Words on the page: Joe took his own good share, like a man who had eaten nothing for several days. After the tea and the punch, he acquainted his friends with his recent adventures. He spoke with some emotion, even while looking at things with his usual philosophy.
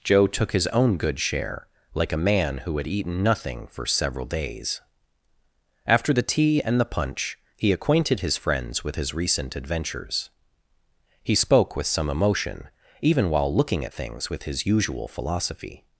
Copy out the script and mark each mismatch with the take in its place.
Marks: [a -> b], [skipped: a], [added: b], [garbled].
Joe took his own good share, like a man who had eaten nothing for several days. After the tea and the punch, he acquainted his friends with his recent adventures. He spoke with some emotion, even while looking at things with his usual philosophy.